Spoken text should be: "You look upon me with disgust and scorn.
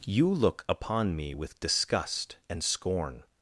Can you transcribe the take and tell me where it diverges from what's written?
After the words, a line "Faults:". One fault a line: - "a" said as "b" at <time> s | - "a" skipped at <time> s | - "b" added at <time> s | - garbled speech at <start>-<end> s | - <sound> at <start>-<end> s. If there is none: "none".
"You look upon me with disgust and scorn.
Faults:
none